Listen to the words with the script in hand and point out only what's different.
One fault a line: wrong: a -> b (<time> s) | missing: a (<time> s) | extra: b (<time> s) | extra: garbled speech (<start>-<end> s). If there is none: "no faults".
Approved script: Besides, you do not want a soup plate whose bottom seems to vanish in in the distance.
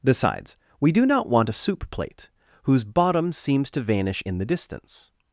wrong: you -> we (0.8 s)
missing: in (4.4 s)